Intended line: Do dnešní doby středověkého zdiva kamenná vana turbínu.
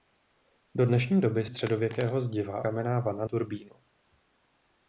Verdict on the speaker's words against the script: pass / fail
pass